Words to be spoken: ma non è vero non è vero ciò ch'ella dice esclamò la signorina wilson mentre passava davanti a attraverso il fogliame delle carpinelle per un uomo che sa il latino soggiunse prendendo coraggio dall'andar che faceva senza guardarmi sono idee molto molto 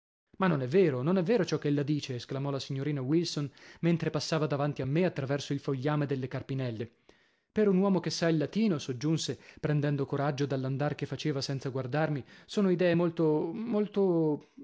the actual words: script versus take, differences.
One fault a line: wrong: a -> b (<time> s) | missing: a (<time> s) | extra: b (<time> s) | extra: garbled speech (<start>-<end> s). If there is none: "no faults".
extra: me (4.9 s)